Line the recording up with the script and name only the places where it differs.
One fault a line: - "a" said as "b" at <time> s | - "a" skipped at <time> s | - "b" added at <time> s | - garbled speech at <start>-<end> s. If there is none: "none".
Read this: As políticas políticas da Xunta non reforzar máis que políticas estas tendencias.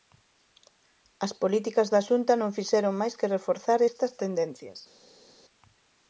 - "políticas" skipped at 1.9 s
- "reforzar" said as "fixeron" at 2.6 s
- "políticas" said as "reforzar" at 3.4 s